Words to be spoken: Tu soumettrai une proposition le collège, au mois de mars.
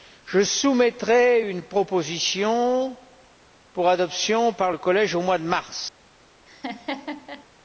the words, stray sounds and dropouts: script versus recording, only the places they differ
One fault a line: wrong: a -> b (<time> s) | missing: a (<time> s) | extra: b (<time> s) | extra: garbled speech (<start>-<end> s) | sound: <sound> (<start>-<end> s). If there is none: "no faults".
wrong: Tu -> Je (0.2 s)
extra: pour adoption par (3.7 s)
sound: laugh (6.5-7.5 s)